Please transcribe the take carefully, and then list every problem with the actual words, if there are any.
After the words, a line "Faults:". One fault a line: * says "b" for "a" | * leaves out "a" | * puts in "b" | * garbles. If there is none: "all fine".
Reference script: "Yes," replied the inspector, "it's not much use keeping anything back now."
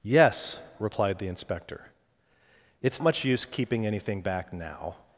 "Yes," replied the inspector, "it's much use keeping anything back now."
Faults:
* leaves out "not"